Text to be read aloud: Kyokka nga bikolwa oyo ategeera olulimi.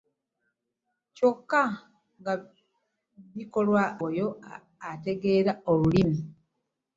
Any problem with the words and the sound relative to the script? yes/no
no